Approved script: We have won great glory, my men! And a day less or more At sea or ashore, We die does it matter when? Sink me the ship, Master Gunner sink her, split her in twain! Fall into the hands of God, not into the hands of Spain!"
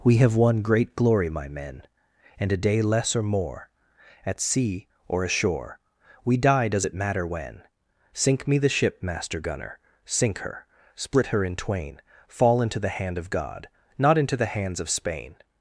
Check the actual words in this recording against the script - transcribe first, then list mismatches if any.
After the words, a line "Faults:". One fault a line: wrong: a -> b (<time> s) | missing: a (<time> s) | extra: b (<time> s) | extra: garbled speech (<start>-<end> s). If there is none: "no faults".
We have won great glory, my men! And a day less or more At sea or ashore, We die does it matter when? Sink me the ship, Master Gunner sink her, split her in twain! Fall into the hand of God, not into the hands of Spain!"
Faults:
wrong: hands -> hand (12.9 s)